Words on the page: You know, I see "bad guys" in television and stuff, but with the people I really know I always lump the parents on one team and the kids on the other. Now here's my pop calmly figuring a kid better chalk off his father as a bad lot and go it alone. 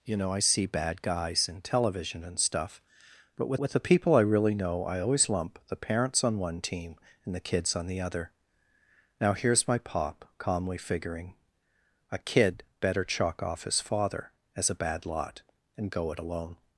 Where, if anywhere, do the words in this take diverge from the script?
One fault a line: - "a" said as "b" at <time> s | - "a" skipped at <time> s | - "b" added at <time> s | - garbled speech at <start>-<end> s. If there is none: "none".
- "with" added at 3.6 s